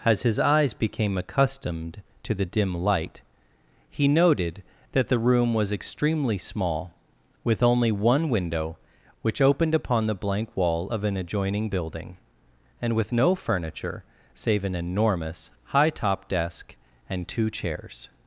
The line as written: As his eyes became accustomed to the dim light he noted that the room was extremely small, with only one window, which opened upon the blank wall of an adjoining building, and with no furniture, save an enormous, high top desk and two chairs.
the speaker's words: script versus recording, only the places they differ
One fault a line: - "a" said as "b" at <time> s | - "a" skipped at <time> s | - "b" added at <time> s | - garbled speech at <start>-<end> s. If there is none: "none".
none